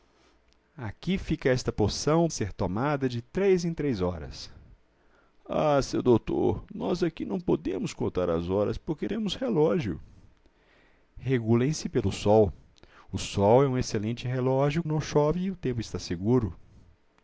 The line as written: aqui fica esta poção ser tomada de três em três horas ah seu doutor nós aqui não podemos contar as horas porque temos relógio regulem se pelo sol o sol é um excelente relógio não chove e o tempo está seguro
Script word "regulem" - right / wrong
right